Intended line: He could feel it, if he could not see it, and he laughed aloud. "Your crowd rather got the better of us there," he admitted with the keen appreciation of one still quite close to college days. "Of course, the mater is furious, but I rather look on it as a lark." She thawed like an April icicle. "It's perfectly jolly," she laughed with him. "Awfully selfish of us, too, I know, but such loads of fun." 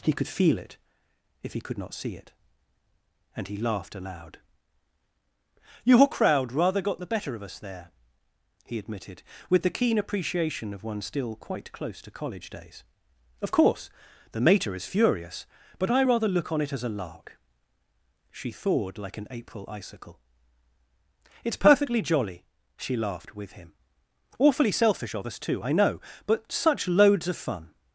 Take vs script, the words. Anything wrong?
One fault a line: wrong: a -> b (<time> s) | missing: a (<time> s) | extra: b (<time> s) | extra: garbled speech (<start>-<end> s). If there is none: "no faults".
no faults